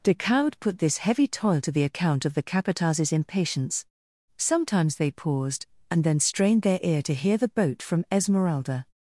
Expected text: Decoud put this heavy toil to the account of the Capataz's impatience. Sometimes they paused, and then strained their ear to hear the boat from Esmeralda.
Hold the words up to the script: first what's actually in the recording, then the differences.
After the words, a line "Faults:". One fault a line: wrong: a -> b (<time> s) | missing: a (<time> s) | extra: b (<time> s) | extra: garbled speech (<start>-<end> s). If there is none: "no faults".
Decoud put this heavy toil to the account of the Capataz's impatience. Sometimes they paused, and then strained their ear to hear the boat from Esmeralda.
Faults:
no faults